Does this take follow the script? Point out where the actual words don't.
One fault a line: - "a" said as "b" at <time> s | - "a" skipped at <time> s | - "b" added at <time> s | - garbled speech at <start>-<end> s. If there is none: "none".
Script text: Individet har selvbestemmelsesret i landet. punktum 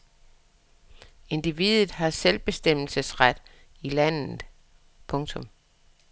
none